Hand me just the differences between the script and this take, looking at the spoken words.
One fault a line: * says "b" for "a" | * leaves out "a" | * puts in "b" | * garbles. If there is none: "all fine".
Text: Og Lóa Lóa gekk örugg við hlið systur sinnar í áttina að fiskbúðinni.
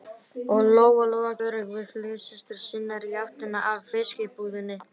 * leaves out "gekk"